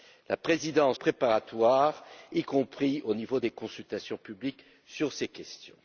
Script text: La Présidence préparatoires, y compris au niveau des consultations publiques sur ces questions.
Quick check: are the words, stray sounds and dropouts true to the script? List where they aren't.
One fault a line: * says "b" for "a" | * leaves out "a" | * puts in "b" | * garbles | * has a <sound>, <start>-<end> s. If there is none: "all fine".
all fine